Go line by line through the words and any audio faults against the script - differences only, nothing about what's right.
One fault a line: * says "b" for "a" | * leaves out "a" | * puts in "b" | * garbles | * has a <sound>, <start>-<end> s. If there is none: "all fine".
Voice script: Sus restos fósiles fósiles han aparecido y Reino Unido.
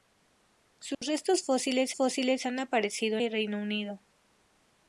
* has a dropout, 0.9-1.0 s